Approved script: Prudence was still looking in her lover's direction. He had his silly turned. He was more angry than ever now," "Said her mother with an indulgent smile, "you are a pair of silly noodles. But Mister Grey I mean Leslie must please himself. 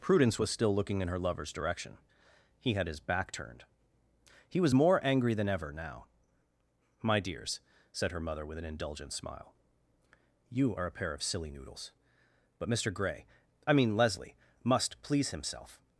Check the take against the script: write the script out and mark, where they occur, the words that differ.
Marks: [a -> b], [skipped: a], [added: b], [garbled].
Prudence was still looking in her lover's direction. He had his [silly -> back] turned. He was more angry than ever now," [added: My dears] "Said her mother with an indulgent smile, "you are a pair of silly noodles. But Mister Grey I mean Leslie must please himself.